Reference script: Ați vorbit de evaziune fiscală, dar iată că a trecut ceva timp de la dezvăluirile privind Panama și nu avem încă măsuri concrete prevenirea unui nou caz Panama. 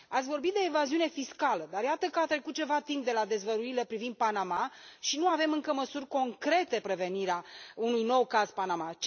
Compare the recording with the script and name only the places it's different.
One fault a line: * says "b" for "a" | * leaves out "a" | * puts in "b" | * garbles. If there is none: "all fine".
all fine